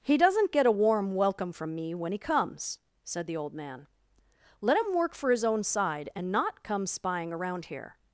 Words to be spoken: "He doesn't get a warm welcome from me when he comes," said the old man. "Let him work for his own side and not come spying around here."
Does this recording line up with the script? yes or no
yes